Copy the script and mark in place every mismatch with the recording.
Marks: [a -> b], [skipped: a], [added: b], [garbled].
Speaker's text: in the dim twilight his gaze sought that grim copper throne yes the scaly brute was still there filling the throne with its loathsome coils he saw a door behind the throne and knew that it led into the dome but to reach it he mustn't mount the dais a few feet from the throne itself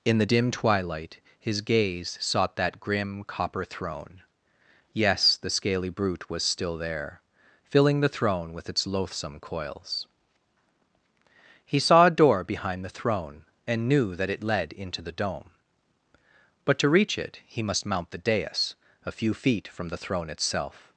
in the dim twilight his gaze sought that grim copper throne yes the scaly brute was still there filling the throne with its loathsome coils he saw a door behind the throne and knew that it led into the dome but to reach it he [mustn't -> must] mount the dais a few feet from the throne itself